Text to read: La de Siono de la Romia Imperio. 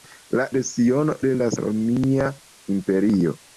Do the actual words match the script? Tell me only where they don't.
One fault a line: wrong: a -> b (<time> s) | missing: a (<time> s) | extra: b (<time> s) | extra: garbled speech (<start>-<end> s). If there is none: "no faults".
no faults